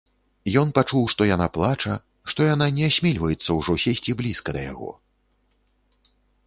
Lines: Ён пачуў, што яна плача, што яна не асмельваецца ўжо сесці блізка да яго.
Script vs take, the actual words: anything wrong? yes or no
no